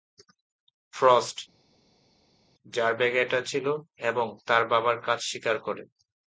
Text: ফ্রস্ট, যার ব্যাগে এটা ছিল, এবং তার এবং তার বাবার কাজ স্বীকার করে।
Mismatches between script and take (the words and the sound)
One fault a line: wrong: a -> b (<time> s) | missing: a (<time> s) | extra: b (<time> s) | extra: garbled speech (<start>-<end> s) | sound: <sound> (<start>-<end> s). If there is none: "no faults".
missing: এবং তার (4.6 s)